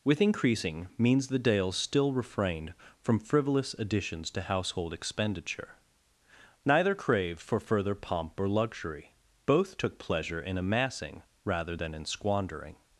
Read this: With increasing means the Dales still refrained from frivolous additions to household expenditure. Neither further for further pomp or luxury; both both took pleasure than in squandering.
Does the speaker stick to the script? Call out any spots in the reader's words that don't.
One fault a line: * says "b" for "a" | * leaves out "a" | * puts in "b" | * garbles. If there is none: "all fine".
* says "craved" for "further"
* leaves out "both"
* puts in "in amassing rather"